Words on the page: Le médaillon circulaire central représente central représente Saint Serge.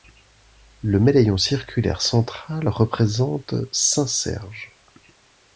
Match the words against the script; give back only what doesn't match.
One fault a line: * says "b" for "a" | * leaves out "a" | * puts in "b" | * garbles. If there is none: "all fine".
* leaves out "central représente"